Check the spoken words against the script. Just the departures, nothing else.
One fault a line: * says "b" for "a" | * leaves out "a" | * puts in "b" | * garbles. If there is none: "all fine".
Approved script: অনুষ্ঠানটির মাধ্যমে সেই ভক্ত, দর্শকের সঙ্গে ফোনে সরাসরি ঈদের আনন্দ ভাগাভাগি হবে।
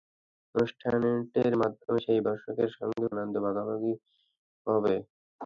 * leaves out "ভক্ত"
* leaves out "ফোনে সরাসরি ঈদের"